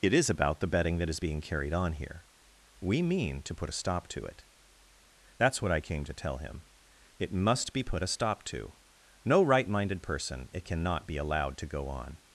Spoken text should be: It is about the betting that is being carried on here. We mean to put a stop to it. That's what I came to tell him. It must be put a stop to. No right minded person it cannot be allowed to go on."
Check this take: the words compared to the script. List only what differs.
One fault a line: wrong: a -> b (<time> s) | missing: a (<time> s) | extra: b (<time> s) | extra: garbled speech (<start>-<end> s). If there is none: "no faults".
no faults